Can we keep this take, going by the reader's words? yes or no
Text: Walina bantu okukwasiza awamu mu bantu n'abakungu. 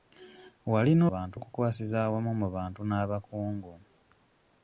yes